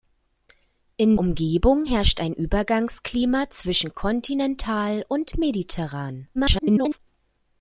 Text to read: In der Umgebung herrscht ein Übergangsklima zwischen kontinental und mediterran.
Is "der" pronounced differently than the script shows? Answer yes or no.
yes